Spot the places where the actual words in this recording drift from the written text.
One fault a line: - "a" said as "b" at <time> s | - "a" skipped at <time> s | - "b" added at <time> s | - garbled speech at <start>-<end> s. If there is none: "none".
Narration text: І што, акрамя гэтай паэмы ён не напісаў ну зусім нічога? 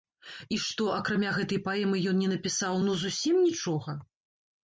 none